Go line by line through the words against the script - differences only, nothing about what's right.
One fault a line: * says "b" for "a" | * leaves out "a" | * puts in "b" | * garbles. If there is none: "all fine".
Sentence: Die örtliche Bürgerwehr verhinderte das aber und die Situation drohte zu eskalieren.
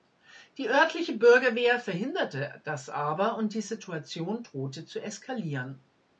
all fine